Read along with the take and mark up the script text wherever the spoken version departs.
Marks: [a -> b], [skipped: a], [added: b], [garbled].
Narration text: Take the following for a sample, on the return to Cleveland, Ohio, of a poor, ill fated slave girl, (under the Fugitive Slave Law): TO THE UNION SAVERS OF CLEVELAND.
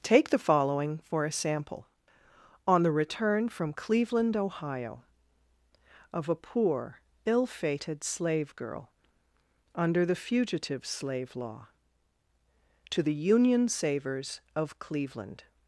Take the following for a sample, on the return [to -> from] Cleveland, Ohio, of a poor, ill fated slave girl, (under the Fugitive Slave Law): TO THE UNION SAVERS OF CLEVELAND.